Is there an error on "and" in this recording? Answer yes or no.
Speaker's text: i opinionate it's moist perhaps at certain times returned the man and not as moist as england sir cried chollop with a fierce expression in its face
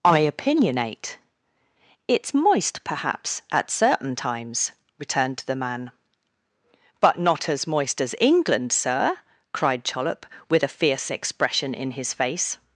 yes